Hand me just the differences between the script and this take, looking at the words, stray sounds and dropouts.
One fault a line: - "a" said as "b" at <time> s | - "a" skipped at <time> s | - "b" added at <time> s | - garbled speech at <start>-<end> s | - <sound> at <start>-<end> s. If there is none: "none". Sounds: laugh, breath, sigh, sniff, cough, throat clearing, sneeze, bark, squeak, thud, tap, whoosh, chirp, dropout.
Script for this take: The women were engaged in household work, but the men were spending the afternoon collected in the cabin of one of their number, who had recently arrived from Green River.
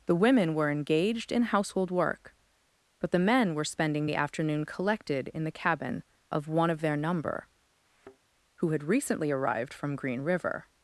- thud at 7.9-8.2 s